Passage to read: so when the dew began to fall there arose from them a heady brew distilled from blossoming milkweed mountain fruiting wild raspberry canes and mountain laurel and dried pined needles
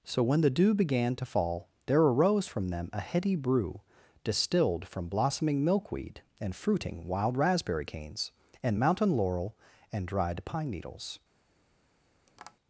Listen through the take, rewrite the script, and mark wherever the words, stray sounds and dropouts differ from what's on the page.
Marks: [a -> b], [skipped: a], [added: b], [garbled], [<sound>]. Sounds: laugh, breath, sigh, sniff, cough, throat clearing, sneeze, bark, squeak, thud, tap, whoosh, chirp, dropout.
so when the dew began to fall there arose from them a heady brew distilled from blossoming milkweed [mountain -> and] fruiting wild raspberry canes and mountain laurel and dried [pined -> pine] needles [tap]